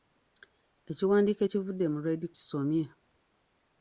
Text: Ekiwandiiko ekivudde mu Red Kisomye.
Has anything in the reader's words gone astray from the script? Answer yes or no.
no